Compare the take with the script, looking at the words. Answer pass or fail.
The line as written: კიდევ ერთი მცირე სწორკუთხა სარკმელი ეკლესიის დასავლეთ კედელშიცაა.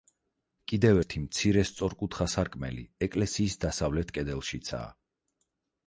pass